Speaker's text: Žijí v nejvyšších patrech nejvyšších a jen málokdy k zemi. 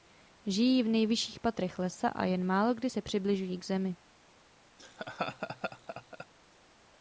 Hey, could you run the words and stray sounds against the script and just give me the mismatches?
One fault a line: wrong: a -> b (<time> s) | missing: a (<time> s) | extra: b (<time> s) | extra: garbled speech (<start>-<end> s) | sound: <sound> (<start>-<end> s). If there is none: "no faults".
wrong: nejvyšších -> lesa (1.8 s)
extra: se přibližují (2.9 s)
sound: laugh (4.8-6.3 s)